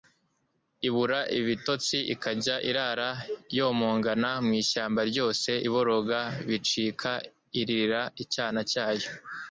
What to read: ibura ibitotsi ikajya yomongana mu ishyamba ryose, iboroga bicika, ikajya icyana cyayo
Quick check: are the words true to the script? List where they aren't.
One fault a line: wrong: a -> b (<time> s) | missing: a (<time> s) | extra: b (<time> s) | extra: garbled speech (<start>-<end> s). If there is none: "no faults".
extra: irara (2.7 s)
wrong: ikajya -> iririra (7.6 s)